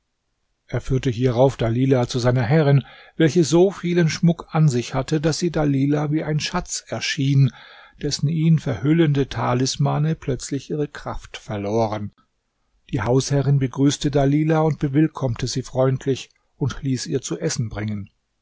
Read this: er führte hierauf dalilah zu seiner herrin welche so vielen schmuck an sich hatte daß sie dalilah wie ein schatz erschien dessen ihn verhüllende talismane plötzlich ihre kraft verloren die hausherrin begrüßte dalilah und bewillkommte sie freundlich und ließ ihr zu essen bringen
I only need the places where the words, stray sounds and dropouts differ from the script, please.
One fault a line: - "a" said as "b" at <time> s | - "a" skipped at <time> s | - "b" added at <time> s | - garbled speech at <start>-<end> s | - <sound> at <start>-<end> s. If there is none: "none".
none